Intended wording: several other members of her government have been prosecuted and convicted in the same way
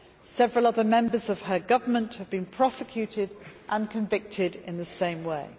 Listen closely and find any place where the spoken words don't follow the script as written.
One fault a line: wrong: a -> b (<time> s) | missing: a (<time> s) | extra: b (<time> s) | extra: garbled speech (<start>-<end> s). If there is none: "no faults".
no faults